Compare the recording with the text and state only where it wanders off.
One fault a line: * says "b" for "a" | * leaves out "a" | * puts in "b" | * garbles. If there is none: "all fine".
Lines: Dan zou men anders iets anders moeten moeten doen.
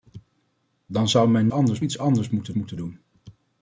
all fine